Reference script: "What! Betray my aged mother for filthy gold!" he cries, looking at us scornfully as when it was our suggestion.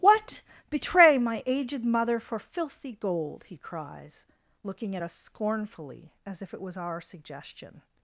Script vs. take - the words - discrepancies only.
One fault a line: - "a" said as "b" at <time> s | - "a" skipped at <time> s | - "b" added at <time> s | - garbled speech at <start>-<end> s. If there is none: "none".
- "when" said as "if" at 6.4 s